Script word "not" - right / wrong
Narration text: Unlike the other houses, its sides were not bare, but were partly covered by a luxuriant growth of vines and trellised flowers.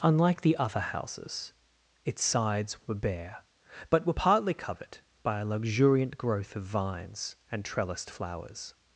wrong